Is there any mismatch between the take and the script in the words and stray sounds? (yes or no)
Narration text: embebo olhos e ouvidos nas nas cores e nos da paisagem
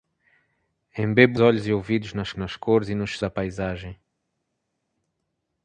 no